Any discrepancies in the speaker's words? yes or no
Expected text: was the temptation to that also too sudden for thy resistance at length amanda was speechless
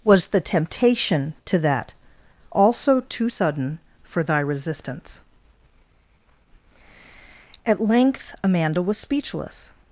no